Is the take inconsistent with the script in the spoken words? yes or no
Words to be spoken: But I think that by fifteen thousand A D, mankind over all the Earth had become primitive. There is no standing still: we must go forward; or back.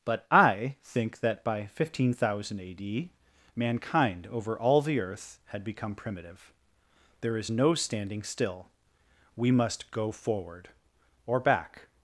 no